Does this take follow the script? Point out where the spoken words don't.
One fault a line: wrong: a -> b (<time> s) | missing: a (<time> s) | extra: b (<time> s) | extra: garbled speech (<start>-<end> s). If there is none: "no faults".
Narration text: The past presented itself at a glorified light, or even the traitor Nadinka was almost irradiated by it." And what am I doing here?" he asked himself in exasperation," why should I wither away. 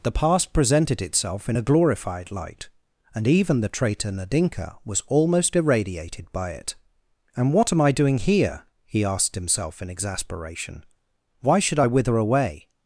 wrong: at -> in (1.5 s)
wrong: or -> and (3.1 s)